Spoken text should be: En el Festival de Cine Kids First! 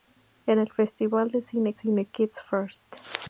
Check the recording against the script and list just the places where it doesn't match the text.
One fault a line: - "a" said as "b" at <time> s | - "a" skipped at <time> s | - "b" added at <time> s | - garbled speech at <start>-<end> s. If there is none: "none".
- "Cine" added at 1.7 s